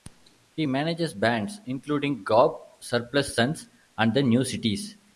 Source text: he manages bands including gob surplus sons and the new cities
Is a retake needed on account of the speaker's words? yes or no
no